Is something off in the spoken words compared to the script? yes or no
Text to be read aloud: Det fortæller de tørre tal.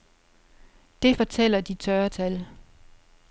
no